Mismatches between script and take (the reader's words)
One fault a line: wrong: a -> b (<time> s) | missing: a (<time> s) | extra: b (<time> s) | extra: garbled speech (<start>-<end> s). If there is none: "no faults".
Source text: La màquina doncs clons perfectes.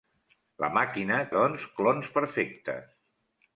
no faults